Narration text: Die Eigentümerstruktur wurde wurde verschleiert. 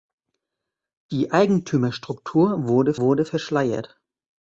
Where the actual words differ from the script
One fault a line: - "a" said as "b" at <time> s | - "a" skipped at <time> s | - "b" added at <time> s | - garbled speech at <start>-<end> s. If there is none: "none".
none